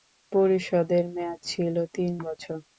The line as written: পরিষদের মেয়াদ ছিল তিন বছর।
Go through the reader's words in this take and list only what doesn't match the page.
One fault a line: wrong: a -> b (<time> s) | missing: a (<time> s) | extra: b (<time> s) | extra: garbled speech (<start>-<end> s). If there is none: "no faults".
no faults